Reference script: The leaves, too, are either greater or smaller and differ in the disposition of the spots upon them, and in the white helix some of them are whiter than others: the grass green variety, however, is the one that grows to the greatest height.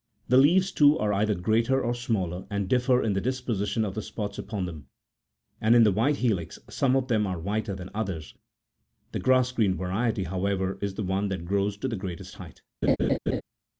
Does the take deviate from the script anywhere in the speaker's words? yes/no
no